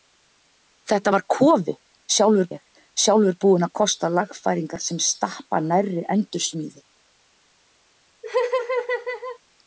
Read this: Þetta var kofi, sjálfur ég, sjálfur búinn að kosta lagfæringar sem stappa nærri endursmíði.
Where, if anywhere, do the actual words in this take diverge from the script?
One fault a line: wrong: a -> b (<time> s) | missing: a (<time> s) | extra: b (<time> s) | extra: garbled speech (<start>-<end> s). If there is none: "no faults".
no faults